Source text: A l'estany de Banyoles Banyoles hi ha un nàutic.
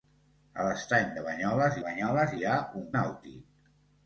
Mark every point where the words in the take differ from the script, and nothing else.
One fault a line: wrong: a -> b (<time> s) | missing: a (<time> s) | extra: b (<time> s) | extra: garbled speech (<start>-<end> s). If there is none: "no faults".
no faults